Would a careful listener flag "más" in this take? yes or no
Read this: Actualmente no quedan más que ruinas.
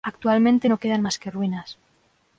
no